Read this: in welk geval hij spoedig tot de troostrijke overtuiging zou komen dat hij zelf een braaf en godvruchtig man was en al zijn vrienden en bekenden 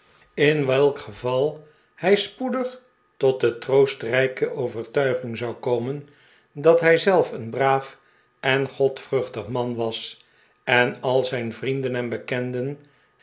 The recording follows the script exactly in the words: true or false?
true